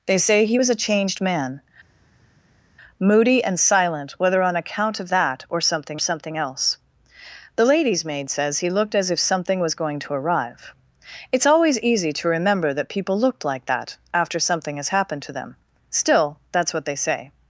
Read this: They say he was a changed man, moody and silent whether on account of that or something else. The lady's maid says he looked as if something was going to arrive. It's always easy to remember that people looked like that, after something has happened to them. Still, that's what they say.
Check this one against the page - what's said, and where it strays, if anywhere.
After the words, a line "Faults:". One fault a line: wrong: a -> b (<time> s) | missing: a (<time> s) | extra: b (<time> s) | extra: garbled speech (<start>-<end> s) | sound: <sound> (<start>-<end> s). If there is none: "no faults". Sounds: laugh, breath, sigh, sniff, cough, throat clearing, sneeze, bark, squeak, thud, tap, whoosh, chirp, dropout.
They say he was a changed man, moody and silent whether on account of that or something something else. The lady's maid says he looked as if something was going to arrive. It's always easy to remember that people looked like that, after something has happened to them. Still, that's what they say.
Faults:
extra: something (6.0 s)